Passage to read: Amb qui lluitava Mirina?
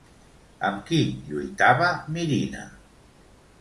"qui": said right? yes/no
yes